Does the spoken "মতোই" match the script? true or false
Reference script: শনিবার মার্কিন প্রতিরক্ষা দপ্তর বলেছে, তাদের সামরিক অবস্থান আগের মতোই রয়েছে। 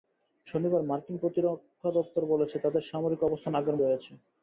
false